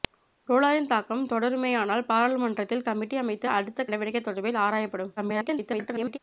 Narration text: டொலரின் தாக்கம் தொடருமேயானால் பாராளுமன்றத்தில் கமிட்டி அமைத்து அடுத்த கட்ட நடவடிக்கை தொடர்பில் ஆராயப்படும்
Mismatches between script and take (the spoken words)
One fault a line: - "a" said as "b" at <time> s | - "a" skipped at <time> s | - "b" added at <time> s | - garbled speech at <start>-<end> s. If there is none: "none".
- "கட்ட" skipped at 3.9 s
- garbled speech at 5.2-6.2 s